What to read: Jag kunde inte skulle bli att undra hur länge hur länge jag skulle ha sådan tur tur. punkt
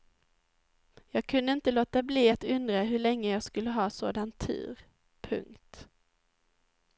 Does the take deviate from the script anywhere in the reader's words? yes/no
yes